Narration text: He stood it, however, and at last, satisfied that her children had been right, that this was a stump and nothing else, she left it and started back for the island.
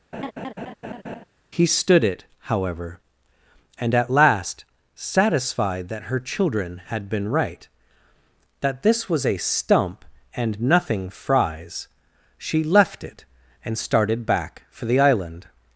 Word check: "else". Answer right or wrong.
wrong